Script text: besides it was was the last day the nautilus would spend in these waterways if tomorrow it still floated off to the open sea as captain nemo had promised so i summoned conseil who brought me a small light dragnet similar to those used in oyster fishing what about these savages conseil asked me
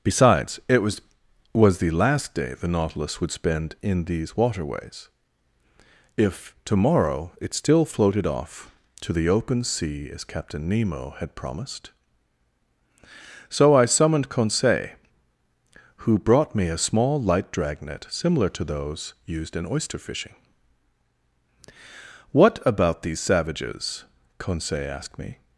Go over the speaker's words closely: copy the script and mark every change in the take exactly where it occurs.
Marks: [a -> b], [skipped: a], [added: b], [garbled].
besides it was was the last day the nautilus would spend in these waterways if tomorrow it still floated off to the open sea as captain nemo had promised so i summoned conseil who brought me a small light dragnet similar to those used in oyster fishing what about these savages conseil asked me